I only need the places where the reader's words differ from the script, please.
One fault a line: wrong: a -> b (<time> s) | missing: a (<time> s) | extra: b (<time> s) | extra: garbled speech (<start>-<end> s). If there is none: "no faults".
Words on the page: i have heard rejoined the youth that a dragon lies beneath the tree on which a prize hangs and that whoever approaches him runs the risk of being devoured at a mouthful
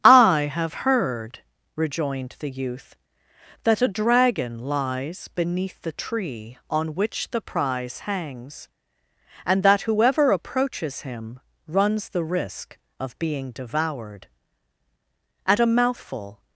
wrong: a -> the (7.3 s)